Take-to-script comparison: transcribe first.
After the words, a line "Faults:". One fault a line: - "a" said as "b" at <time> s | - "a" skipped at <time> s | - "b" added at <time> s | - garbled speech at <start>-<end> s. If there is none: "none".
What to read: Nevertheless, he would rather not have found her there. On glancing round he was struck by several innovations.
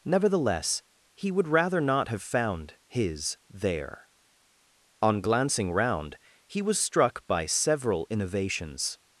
Nevertheless, he would rather not have found his there. On glancing round he was struck by several innovations.
Faults:
- "her" said as "his" at 2.9 s